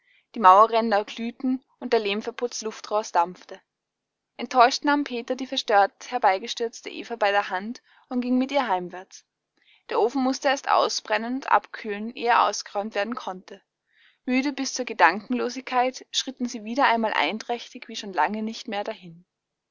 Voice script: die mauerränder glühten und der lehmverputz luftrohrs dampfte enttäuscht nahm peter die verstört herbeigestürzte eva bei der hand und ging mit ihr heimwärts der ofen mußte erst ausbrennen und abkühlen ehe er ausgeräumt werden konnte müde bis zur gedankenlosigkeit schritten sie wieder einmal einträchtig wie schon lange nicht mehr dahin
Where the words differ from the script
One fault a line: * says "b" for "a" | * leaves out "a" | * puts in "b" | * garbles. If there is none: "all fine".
all fine